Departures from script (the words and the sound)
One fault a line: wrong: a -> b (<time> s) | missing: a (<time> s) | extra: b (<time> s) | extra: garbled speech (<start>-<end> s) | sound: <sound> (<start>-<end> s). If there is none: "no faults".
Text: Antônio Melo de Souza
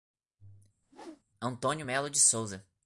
sound: whoosh (0.8-1.2 s)